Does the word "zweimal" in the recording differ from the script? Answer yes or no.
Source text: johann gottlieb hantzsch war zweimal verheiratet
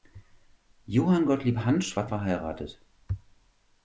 yes